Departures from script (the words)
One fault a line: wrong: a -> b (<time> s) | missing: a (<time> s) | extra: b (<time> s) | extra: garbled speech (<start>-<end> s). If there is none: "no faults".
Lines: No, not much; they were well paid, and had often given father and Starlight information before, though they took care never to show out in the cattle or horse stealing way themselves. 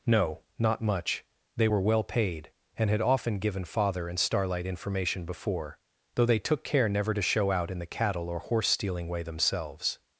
no faults